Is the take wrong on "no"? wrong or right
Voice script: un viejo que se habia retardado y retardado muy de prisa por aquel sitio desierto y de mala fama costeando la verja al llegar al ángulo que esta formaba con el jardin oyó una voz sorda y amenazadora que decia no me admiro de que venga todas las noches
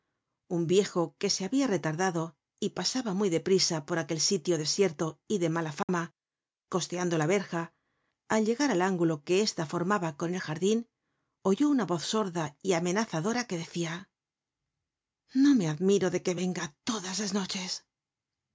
right